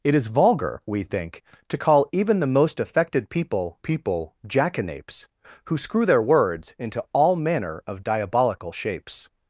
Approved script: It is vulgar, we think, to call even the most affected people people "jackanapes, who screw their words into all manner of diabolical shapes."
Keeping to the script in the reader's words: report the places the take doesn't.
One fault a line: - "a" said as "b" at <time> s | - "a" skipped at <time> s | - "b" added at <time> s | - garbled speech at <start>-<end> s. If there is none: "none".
none